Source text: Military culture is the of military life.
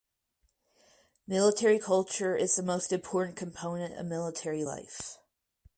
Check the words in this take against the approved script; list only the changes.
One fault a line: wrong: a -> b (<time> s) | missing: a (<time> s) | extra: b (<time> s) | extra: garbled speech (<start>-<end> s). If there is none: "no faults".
extra: most important component (2.6 s)